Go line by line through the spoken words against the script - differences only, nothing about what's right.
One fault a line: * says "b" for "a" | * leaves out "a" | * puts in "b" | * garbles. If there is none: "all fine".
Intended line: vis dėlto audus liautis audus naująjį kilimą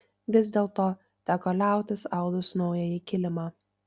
* says "teko" for "audus"